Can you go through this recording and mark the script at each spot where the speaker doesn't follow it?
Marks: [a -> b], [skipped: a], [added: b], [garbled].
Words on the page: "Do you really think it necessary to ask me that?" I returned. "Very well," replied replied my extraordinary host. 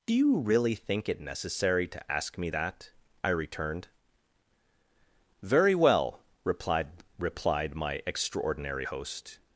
"Do you really think it necessary to ask me that?" I returned. "Very well," replied replied my extraordinary host.